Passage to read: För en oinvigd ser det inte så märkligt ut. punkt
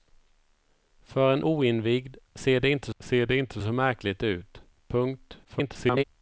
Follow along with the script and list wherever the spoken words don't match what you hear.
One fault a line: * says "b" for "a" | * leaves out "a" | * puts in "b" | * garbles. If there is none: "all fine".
* puts in "ser det inte"
* garbles